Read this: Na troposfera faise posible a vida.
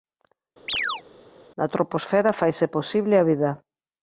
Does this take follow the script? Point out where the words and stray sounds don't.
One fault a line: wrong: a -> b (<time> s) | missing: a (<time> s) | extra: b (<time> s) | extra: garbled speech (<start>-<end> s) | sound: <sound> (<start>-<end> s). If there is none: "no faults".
sound: chirp (0.7-1.0 s)